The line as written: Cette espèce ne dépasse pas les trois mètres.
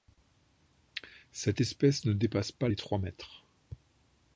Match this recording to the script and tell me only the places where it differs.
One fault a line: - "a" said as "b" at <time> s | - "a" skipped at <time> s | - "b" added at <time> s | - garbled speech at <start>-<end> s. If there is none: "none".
none